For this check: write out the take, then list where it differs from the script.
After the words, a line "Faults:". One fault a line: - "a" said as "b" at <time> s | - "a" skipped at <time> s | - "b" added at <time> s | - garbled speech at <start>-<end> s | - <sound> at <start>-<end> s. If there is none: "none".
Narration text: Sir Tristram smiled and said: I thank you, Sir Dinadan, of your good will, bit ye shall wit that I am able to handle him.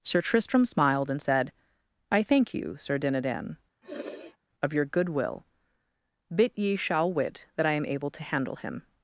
Sir Tristram smiled and said: I thank you, Sir Dinadan, of your good will, bit ye shall wit that I am able to handle him.
Faults:
- sniff at 3.8-4.4 s